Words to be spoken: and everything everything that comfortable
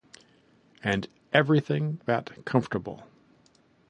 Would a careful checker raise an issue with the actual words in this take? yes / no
yes